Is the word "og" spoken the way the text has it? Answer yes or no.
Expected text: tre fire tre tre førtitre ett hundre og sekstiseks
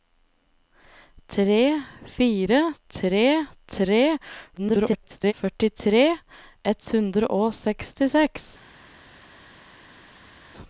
yes